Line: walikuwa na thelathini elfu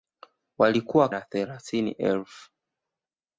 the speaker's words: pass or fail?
pass